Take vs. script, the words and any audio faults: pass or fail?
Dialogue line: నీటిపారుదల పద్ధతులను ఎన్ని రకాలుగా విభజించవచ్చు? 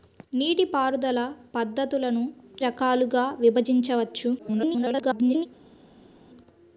fail